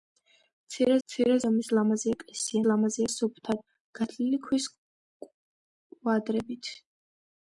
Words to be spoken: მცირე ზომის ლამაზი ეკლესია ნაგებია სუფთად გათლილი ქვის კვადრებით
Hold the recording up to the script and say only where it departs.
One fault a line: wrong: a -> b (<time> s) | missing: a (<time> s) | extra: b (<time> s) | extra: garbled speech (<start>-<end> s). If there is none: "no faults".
extra: მცირე (1.1 s)
wrong: ნაგებია -> ლამაზი (2.7 s)